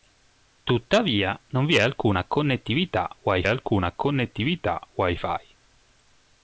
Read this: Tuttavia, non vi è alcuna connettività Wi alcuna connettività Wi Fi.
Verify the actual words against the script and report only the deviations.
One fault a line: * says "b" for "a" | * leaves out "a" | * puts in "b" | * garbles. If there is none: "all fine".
all fine